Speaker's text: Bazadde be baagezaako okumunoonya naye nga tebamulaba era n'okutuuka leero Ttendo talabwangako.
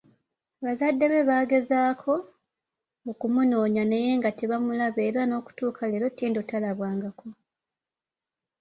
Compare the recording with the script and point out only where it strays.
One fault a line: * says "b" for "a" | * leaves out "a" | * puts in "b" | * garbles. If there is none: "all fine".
all fine